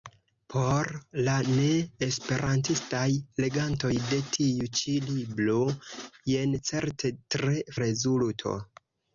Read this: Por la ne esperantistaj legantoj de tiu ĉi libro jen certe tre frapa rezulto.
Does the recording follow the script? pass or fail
fail